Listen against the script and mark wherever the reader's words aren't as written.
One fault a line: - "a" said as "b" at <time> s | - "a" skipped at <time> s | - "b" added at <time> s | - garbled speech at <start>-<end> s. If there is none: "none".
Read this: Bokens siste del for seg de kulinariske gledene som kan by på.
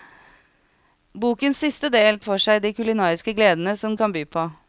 none